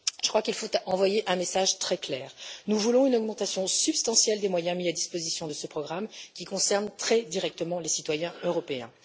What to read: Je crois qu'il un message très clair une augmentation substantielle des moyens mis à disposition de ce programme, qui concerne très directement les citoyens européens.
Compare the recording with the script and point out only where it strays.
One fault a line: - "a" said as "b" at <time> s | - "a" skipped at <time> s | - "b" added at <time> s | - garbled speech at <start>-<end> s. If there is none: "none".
- "faut envoyer" added at 0.5 s
- "nous voulons" added at 2.7 s